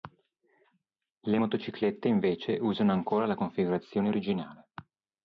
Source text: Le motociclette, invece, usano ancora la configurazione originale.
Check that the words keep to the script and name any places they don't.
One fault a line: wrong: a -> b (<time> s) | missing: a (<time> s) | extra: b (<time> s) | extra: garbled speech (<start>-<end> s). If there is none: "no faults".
no faults